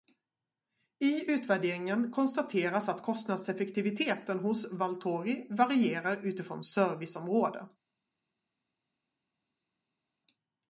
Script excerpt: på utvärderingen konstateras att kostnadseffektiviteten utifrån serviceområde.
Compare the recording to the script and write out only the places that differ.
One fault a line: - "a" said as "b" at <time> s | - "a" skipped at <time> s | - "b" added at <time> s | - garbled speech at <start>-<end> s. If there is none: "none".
- "på" said as "I" at 1.0 s
- "hos Valtori varierar" added at 4.4 s